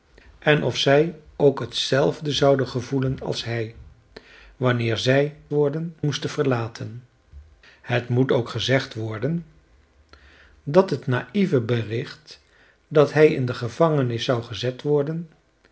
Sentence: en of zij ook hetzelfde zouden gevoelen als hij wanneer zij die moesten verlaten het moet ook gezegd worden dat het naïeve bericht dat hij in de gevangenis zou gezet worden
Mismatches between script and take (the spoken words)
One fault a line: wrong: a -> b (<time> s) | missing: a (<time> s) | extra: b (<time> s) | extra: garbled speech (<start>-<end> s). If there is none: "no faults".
wrong: die -> worden (5.5 s)